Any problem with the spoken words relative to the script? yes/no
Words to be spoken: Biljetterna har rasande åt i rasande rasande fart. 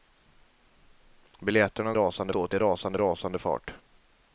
no